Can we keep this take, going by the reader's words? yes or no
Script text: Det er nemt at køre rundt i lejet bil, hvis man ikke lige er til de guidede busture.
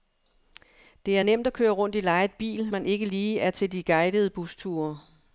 no